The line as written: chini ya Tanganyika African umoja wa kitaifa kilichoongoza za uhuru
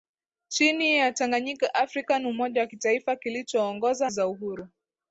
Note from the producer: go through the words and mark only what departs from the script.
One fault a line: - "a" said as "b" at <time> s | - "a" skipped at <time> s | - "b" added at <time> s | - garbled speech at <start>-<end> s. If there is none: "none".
none